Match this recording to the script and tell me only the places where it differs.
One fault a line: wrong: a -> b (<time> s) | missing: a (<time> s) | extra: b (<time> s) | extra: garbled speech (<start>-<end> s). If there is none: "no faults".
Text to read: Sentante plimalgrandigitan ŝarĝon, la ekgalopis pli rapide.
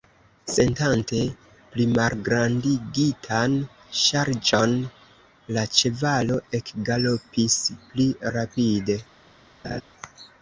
extra: ĉevalo (5.8 s)